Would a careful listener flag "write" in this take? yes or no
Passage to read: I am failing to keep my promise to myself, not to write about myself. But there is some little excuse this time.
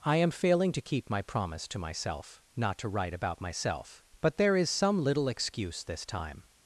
no